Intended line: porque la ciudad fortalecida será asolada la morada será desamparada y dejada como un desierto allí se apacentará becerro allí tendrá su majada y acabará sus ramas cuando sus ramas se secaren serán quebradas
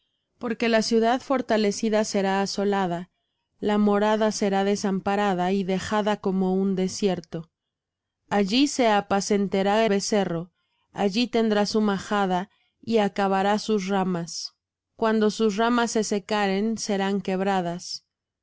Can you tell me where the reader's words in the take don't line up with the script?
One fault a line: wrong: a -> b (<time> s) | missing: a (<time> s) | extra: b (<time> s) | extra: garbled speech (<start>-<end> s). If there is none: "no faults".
no faults